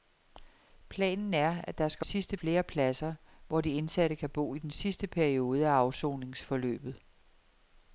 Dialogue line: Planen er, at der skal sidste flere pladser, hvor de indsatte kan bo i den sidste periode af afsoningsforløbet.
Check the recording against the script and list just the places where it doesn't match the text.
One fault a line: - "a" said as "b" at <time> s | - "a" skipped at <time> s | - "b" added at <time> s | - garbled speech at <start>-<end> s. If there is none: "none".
none